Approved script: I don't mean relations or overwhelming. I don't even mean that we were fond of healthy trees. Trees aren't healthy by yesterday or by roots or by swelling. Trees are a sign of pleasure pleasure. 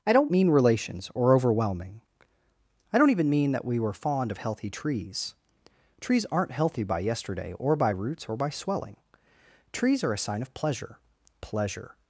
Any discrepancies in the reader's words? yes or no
no